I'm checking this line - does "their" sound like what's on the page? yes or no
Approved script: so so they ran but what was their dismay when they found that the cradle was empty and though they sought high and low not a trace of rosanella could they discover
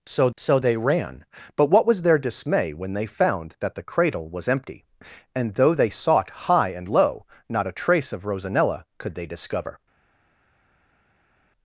yes